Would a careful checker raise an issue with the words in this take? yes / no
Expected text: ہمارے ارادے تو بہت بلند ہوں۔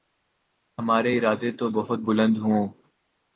no